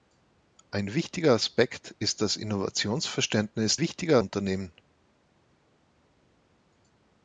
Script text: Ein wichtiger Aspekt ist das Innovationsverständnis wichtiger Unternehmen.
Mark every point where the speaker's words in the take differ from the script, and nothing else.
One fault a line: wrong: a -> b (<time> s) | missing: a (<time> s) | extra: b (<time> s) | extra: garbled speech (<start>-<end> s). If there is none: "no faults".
no faults